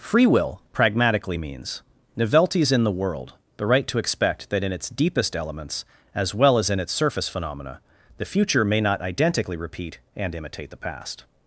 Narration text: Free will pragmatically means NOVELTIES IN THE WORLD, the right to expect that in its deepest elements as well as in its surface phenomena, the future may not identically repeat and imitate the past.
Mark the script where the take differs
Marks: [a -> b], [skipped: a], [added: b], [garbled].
Free will pragmatically means NOVELTIES IN THE WORLD, the right to expect that in its deepest elements as well as in its surface phenomena, the future may not identically repeat and imitate the past.